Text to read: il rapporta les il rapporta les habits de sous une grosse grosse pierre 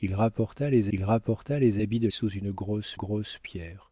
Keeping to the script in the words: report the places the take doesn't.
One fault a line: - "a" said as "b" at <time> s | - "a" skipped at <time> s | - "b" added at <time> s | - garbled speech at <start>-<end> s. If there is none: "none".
none